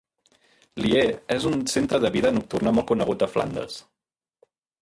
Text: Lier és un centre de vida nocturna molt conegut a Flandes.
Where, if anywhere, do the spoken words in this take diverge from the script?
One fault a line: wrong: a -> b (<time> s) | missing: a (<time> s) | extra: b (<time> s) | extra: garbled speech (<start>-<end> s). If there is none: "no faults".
no faults